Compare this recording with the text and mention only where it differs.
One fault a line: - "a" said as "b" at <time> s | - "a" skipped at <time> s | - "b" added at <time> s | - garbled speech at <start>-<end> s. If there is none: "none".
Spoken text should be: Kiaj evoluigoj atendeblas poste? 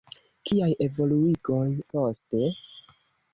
- "atendeblas" skipped at 1.7 s